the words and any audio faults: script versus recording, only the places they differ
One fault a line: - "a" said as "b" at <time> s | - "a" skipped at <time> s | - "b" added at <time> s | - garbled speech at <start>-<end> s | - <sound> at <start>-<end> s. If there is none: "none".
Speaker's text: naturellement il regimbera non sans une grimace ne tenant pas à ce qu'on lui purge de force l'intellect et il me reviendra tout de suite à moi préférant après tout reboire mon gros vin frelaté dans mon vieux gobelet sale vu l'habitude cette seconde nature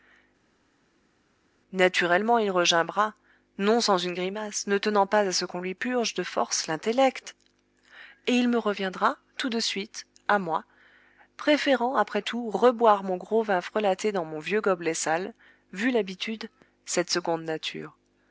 none